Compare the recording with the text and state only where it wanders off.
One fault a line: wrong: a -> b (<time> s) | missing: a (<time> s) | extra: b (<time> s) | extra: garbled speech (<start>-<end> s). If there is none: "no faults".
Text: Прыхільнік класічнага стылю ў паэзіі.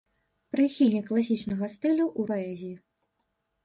no faults